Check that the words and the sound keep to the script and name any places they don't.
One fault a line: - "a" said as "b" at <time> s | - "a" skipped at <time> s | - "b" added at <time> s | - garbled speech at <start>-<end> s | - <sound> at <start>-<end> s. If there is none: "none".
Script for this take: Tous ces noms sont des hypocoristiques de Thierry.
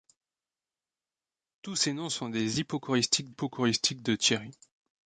- "hypocoristiques" added at 3.3 s